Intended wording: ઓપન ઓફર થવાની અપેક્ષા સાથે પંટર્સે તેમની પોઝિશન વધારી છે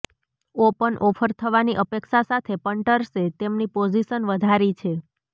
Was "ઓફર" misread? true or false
false